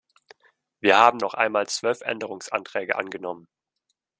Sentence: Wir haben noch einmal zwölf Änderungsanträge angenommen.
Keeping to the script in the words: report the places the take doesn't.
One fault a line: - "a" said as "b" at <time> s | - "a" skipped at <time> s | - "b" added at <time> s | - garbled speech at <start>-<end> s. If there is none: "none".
none